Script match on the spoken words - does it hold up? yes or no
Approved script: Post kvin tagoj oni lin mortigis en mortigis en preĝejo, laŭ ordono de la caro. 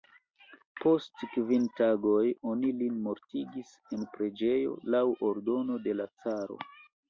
no